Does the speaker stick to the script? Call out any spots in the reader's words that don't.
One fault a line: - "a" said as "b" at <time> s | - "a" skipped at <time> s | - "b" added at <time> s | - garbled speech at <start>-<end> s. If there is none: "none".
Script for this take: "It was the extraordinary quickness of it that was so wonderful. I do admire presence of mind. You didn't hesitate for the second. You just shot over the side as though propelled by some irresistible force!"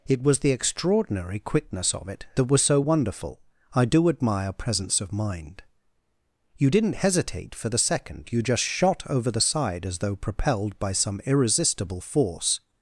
none